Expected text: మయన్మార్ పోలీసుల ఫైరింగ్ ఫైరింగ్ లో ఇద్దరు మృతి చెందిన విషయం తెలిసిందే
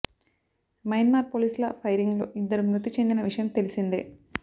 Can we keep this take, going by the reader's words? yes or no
no